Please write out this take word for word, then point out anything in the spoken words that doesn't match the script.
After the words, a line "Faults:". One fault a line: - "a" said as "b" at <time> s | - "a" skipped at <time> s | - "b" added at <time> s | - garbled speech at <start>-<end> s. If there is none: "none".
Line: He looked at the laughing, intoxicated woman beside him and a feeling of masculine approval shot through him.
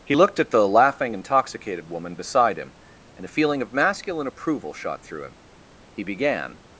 He looked at the laughing, intoxicated woman beside him and a feeling of masculine approval shot through him. He began
Faults:
- "He began" added at 5.9 s